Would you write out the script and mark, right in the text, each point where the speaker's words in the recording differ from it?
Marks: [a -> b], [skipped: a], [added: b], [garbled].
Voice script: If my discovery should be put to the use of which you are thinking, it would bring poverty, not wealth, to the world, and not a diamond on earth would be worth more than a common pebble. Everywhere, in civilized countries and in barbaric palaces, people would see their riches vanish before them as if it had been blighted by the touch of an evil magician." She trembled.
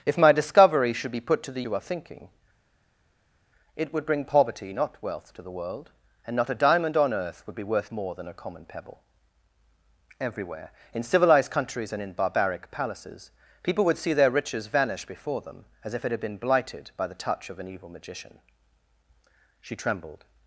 If my discovery should be put to the [skipped: use of which] you are thinking, it would bring poverty, not wealth, to the world, and not a diamond on earth would be worth more than a common pebble. Everywhere, in civilized countries and in barbaric palaces, people would see their riches vanish before them as if it had been blighted by the touch of an evil magician." She trembled.